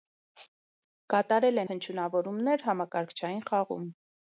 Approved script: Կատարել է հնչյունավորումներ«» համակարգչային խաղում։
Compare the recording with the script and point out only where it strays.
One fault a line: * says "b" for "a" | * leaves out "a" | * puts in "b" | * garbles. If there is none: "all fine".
all fine